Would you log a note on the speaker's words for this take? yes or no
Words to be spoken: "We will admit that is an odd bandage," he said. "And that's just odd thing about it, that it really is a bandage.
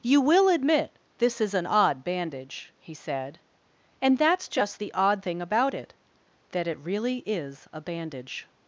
yes